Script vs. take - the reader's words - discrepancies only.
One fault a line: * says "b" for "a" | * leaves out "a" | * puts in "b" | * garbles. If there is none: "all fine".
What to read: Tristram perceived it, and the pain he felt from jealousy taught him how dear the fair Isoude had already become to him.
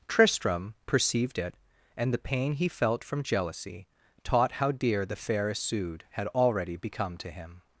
* leaves out "him"